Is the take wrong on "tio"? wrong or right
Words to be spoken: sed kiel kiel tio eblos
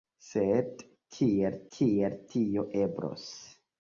right